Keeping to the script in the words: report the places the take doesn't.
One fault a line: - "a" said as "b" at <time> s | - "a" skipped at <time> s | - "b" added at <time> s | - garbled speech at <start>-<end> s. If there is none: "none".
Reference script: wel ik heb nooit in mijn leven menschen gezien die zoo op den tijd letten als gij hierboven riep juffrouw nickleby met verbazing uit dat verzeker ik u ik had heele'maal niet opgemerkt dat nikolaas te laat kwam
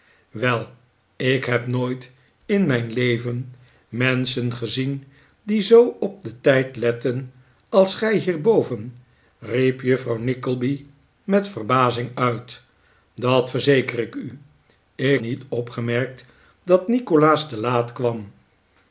- "had heele'maal" skipped at 15.2 s